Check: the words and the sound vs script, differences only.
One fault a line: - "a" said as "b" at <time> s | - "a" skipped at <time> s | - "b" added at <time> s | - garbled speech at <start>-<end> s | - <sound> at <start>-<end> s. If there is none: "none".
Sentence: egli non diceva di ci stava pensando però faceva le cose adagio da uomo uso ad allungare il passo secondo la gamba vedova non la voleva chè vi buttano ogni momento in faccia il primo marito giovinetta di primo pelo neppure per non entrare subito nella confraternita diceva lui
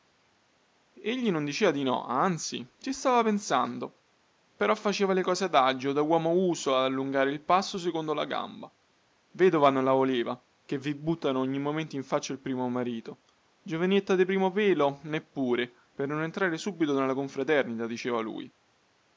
- "no anzi" added at 1.8 s